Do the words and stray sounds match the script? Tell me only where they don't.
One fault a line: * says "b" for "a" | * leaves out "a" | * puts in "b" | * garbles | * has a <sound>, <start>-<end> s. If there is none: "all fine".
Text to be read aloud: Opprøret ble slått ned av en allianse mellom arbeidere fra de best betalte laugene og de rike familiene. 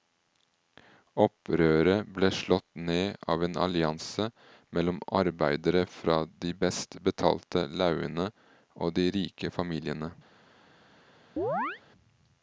* has a chirp, 11.4-11.8 s